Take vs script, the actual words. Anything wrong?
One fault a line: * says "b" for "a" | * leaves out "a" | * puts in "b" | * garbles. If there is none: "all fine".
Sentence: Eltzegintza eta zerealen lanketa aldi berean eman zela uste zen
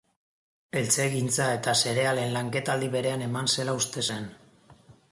all fine